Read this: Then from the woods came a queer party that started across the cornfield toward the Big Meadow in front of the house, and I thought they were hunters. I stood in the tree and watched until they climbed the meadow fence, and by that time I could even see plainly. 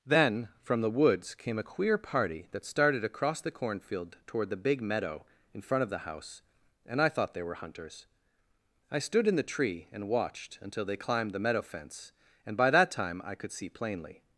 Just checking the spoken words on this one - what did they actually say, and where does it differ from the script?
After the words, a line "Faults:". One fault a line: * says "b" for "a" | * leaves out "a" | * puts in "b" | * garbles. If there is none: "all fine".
Then from the woods came a queer party that started across the cornfield toward the Big Meadow in front of the house, and I thought they were hunters. I stood in the tree and watched until they climbed the meadow fence, and by that time I could see plainly.
Faults:
* leaves out "even"